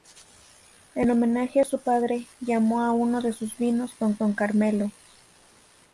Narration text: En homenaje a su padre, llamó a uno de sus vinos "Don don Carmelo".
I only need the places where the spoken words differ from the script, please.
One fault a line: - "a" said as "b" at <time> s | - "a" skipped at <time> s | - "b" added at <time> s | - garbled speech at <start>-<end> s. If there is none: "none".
none